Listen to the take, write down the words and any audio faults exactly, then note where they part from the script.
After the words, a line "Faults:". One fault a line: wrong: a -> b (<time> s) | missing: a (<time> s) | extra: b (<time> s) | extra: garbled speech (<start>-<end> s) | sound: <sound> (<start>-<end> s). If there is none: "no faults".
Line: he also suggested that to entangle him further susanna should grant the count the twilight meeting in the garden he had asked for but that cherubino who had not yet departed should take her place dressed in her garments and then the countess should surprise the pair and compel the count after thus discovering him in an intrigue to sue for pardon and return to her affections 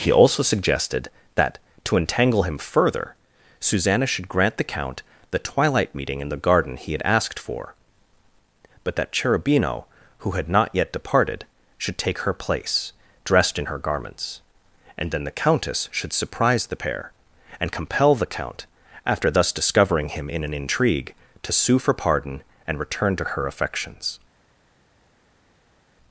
he also suggested that to entangle him further susanna should grant the count the twilight meeting in the garden he had asked for but that cherubino who had not yet departed should take her place dressed in her garments and then the countess should surprise the pair and compel the count after thus discovering him in an intrigue to sue for pardon and return to her affections
Faults:
no faults